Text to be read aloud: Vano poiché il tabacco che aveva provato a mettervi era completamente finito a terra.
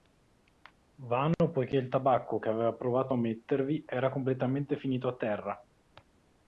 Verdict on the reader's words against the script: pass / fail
pass